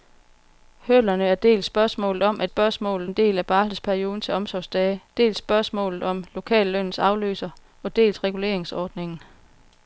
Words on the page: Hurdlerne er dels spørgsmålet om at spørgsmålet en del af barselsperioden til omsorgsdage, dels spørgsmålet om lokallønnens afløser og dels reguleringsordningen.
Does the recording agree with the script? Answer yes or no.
yes